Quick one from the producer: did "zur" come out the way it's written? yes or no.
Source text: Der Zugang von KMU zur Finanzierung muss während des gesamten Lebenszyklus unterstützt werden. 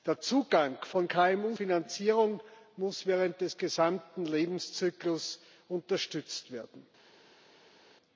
no